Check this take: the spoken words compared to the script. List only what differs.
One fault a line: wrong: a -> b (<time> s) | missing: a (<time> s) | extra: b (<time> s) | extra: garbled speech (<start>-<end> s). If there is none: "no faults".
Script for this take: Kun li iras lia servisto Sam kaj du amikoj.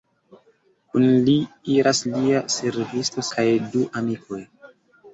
missing: Sam (3.2 s)